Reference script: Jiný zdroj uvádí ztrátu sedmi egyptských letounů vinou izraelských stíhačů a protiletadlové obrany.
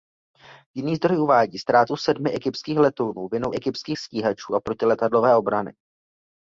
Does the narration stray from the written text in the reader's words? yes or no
yes